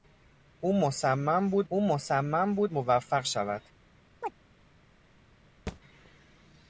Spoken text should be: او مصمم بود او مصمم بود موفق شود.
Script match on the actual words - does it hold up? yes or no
yes